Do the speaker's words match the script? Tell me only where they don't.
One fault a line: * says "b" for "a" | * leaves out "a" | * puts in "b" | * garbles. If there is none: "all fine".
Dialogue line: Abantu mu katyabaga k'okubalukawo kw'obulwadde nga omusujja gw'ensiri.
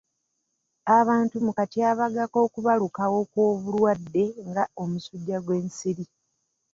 all fine